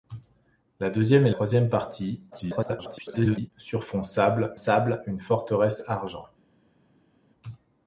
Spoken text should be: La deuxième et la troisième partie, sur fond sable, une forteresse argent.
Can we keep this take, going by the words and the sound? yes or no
no